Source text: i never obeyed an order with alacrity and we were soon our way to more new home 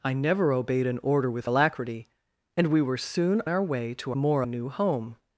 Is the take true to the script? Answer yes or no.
yes